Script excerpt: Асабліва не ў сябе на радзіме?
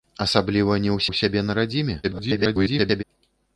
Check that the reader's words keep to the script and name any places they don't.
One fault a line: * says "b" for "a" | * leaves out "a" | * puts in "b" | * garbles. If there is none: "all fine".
* puts in "ў"
* garbles